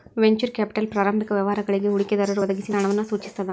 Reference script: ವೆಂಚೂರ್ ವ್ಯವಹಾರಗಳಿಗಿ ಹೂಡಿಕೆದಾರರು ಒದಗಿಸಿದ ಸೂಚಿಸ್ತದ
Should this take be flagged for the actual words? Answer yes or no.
yes